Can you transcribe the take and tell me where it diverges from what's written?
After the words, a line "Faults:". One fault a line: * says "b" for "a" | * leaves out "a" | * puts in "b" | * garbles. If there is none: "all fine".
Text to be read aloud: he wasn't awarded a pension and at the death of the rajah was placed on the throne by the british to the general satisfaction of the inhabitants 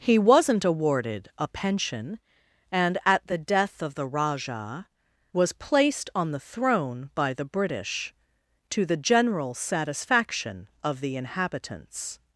he wasn't awarded a pension and at the death of the rajah was placed on the throne by the british to the general satisfaction of the inhabitants
Faults:
all fine